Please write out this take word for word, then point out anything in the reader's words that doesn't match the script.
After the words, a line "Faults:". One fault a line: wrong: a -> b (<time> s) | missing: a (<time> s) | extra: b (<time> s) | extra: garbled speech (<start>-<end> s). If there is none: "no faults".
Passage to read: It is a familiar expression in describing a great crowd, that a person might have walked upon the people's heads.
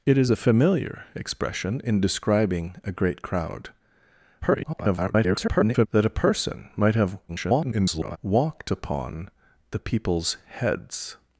It is a familiar expression in describing a great crowd, [garbled] that a person might have [garbled] walked upon the people's heads.
Faults:
extra: garbled speech (4.4-5.9 s)
extra: garbled speech (7.3-8.2 s)